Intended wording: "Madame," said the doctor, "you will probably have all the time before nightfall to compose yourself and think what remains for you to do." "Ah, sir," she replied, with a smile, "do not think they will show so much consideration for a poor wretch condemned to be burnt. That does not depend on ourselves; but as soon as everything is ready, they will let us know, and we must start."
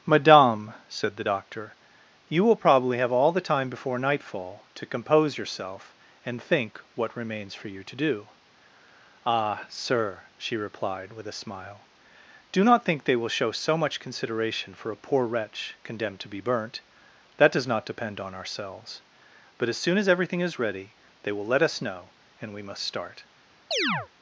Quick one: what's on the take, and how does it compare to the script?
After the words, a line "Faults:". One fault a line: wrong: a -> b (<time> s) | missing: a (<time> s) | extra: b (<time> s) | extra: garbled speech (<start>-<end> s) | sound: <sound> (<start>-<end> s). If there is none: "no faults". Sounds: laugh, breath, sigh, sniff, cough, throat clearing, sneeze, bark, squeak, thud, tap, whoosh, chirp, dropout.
"Madame," said the doctor, "you will probably have all the time before nightfall to compose yourself and think what remains for you to do." "Ah, sir," she replied, with a smile, "do not think they will show so much consideration for a poor wretch condemned to be burnt. That does not depend on ourselves; but as soon as everything is ready, they will let us know, and we must start."
Faults:
sound: chirp (23.7-24.1 s)